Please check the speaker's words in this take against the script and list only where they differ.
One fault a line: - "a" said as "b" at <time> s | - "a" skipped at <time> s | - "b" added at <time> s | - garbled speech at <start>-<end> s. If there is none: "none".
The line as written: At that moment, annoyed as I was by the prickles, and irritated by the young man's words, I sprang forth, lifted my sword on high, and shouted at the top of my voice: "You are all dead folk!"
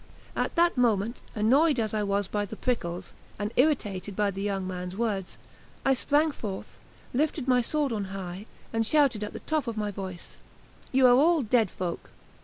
none